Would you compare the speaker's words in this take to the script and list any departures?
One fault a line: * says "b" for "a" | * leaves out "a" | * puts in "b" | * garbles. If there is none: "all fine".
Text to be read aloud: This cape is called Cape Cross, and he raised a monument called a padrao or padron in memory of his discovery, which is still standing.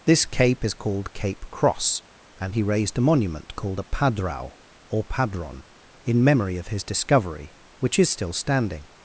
all fine